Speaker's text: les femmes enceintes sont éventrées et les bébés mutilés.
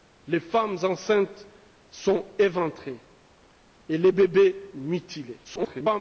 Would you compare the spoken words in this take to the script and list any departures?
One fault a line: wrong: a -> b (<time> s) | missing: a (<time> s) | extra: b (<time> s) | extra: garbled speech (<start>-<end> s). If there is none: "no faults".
extra: garbled speech (5.4-6.0 s)